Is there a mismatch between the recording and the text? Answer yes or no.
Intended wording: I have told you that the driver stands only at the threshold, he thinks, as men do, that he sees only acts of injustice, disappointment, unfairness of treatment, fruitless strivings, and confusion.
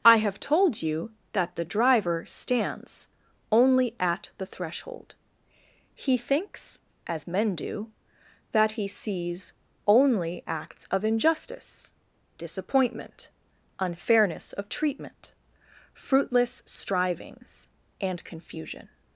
no